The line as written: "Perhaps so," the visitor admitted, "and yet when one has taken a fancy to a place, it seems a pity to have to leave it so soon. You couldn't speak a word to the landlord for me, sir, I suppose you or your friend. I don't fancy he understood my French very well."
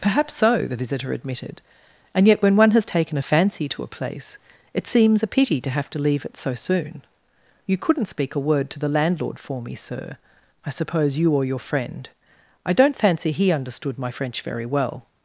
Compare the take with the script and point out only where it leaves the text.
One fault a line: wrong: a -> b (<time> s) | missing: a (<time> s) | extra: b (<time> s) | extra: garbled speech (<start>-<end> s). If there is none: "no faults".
no faults